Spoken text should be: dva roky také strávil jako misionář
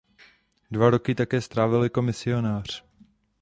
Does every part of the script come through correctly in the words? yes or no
yes